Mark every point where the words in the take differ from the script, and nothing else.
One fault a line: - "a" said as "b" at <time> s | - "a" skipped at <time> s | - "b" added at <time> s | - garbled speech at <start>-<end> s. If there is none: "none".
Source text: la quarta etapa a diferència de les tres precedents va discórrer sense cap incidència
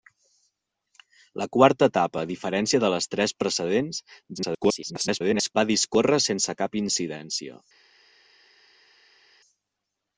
- garbled speech at 4.3-5.6 s